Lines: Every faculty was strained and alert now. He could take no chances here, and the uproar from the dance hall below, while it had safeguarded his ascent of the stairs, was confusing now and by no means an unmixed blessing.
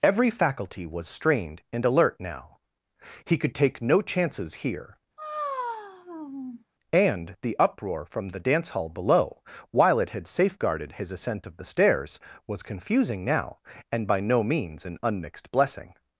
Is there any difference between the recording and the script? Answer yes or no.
no